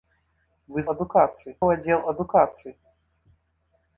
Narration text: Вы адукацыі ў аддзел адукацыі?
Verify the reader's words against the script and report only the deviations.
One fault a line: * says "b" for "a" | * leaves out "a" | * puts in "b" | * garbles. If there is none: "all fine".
all fine